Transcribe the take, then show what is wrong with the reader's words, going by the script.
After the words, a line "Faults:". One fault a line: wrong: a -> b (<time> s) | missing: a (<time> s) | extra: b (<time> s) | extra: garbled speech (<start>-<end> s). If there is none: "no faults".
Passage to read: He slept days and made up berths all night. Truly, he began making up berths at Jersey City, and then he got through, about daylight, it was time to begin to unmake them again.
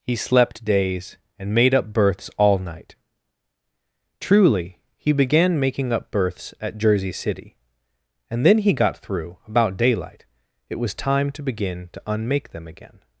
He slept days and made up berths all night. Truly, he began making up berths at Jersey City, and then he got through, about daylight, it was time to begin to unmake them again.
Faults:
no faults